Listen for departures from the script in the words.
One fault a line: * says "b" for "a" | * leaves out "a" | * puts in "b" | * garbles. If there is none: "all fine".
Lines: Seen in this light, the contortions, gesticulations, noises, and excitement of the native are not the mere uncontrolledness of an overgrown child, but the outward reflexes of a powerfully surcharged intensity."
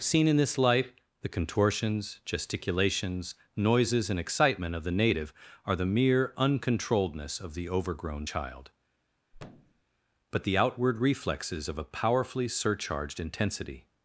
* leaves out "not"
* says "the" for "an"